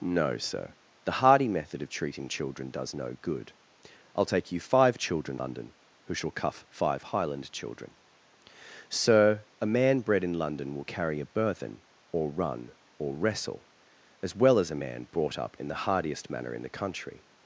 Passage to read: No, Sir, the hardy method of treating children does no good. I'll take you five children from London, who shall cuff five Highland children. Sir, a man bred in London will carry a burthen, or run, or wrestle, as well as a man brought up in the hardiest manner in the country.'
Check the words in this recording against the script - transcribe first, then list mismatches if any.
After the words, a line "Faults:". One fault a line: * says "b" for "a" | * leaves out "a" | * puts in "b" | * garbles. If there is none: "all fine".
No, Sir, the hardy method of treating children does no good. I'll take you five children London, who shall cuff five Highland children. Sir, a man bred in London will carry a burthen, or run, or wrestle, as well as a man brought up in the hardiest manner in the country.'
Faults:
* leaves out "from"